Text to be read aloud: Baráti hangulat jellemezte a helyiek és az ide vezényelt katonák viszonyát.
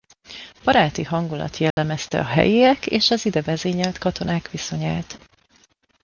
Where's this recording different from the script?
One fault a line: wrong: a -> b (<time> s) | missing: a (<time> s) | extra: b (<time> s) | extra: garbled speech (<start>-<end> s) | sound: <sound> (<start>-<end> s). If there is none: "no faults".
sound: dropout (1.7-1.8 s)